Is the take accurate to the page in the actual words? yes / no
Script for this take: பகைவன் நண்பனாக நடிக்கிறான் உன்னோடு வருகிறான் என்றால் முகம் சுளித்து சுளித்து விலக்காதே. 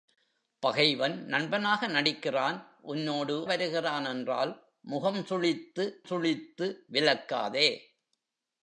yes